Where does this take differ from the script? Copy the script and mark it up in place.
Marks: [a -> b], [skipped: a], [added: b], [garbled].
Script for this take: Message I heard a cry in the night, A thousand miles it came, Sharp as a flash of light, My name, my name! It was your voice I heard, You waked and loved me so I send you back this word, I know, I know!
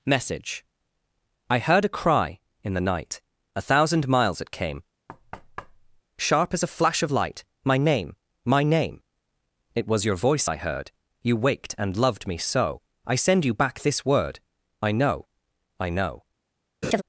Message I heard a cry in the night, A thousand miles it came, Sharp as a flash of light, My name, my name! It was your voice I heard, You waked and loved me so I send you back this word, I know, I know!